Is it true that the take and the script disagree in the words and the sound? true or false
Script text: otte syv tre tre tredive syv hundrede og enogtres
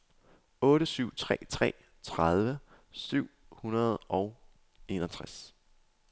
false